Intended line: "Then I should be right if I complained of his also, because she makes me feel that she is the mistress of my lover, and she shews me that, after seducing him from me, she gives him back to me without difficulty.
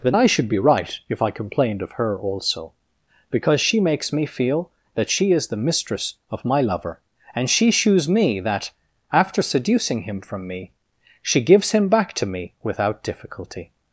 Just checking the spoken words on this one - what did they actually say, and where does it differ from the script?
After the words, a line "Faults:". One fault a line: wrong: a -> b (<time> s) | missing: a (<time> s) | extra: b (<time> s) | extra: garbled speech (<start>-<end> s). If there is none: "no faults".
"Then I should be right if I complained of her also, because she makes me feel that she is the mistress of my lover, and she shews me that, after seducing him from me, she gives him back to me without difficulty.
Faults:
wrong: his -> her (1.9 s)